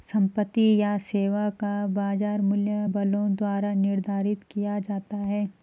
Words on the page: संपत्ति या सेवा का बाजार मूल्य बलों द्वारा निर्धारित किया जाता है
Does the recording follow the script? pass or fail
pass